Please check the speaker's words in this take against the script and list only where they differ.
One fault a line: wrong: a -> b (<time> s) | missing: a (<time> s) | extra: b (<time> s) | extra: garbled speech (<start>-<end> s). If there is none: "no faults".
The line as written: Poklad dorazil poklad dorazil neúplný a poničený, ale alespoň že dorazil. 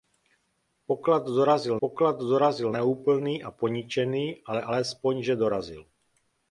no faults